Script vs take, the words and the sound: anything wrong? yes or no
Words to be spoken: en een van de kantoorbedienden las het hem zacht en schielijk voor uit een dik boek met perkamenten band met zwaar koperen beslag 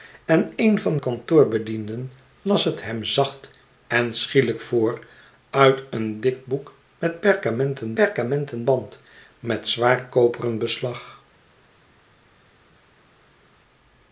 yes